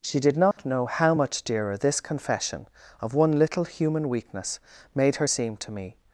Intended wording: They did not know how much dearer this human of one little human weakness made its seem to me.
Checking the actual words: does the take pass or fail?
fail